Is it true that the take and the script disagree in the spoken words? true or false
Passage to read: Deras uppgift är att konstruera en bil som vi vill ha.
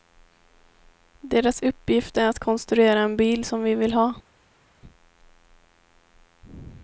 false